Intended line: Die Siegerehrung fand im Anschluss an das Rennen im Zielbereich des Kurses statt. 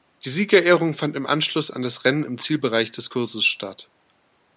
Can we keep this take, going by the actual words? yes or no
yes